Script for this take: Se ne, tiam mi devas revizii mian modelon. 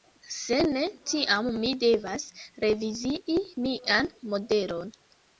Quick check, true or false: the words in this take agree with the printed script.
true